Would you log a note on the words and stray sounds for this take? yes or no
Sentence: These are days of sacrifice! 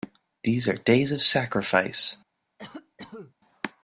yes